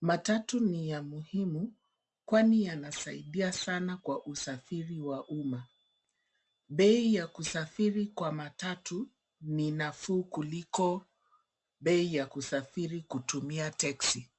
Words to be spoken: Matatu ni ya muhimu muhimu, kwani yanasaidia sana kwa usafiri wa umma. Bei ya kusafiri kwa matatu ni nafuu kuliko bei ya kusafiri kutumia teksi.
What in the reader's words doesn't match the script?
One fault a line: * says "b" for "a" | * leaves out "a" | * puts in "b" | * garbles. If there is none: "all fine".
* leaves out "muhimu"